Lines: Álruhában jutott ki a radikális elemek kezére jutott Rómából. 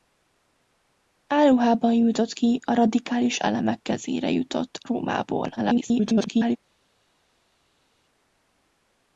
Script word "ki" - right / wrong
right